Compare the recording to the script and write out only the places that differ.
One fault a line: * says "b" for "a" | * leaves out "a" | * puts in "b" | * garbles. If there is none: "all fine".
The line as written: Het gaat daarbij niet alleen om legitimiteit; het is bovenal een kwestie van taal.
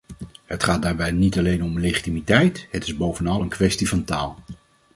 all fine